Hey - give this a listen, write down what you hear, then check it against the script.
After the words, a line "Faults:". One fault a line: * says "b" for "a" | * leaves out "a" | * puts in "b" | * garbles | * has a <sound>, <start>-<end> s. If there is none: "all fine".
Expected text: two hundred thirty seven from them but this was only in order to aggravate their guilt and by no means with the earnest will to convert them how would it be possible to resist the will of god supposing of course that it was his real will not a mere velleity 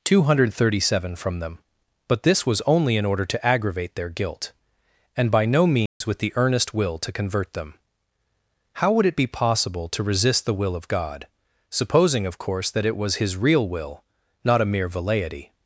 two hundred thirty seven from them but this was only in order to aggravate their guilt and by no means with the earnest will to convert them how would it be possible to resist the will of god supposing of course that it was his real will not a mere velleity
Faults:
* has a dropout, 5.9-6.0 s